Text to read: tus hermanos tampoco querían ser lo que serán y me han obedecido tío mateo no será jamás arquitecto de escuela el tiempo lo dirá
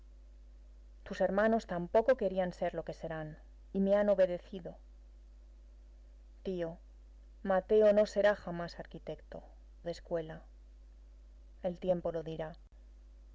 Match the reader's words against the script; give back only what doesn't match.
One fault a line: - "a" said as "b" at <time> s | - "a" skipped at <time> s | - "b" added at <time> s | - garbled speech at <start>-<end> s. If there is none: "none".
none